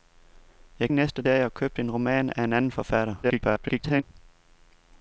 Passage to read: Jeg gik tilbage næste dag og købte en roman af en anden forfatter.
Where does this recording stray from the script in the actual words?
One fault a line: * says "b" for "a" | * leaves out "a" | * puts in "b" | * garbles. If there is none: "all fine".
* leaves out "gik tilbage"
* garbles